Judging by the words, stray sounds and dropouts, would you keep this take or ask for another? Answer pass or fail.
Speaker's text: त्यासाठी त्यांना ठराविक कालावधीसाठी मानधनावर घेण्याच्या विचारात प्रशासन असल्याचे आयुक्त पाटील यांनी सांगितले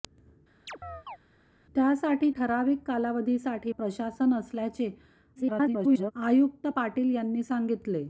fail